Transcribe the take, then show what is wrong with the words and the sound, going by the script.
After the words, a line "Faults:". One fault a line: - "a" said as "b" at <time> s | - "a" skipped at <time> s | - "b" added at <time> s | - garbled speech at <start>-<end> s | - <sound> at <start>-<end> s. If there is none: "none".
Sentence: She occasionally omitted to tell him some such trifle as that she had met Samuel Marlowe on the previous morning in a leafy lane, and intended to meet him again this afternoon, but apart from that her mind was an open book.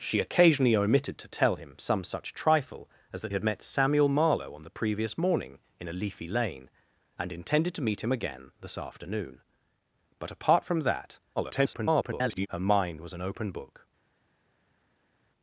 She occasionally omitted to tell him some such trifle as that had met Samuel Marlowe on the previous morning in a leafy lane, and intended to meet him again this afternoon, but apart from that [garbled] her mind was an open book.
Faults:
- "she" skipped at 3.3 s
- garbled speech at 11.4-12.5 s